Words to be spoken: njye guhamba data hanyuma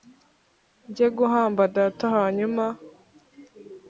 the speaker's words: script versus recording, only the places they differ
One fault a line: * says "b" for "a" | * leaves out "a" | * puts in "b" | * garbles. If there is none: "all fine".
all fine